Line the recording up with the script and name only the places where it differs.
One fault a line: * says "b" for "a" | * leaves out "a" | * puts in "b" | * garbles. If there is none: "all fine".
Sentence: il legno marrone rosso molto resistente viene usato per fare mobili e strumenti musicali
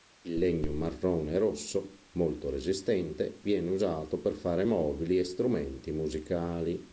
all fine